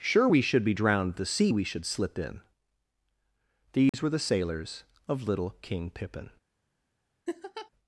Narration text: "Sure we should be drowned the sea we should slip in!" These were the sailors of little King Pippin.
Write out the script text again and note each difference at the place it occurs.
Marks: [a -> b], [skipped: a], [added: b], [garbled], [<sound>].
"Sure we should be drowned the sea we should slip in!" These [dropout] were the sailors of little King Pippin. [laugh]